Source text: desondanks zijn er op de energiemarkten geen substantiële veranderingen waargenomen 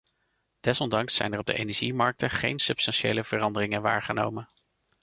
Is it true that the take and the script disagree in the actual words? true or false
false